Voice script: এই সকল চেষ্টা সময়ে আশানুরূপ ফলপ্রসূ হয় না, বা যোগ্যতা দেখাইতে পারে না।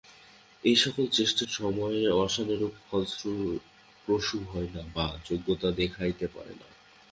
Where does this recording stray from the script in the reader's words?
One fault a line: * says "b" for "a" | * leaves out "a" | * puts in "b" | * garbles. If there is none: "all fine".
all fine